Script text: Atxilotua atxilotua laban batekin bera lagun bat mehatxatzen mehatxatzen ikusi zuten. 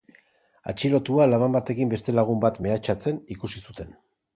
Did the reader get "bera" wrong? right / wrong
wrong